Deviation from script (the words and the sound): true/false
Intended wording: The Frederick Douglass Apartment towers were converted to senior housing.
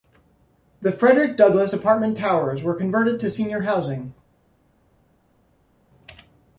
false